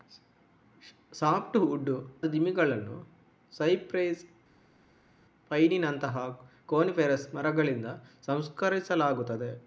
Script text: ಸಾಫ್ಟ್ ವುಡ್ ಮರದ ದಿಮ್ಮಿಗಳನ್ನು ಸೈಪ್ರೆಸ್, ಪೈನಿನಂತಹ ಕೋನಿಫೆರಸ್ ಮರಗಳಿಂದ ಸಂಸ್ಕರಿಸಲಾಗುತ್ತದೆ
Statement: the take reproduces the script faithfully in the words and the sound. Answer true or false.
false